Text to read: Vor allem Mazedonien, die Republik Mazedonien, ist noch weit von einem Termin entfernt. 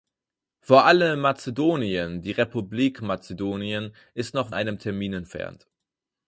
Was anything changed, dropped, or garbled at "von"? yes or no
yes